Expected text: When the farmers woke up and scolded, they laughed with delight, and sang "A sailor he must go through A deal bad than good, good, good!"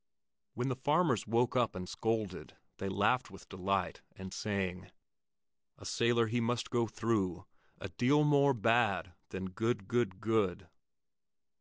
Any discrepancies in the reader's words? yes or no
yes